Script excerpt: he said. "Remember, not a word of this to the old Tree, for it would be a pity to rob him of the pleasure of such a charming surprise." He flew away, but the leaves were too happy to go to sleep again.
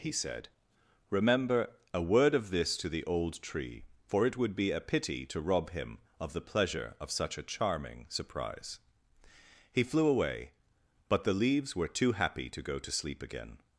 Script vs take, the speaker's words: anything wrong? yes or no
yes